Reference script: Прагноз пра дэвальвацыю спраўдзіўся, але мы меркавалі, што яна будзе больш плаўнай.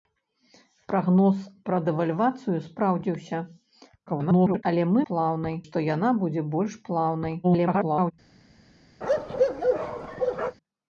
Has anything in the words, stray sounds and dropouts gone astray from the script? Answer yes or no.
yes